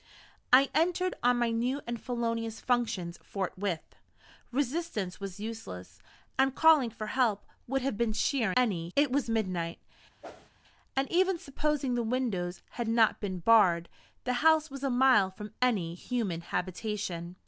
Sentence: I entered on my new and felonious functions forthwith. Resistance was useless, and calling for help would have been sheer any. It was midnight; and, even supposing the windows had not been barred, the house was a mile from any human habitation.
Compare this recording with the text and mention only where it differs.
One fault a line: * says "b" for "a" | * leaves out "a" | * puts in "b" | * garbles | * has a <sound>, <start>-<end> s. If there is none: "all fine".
* has a whoosh, 10.2-10.5 s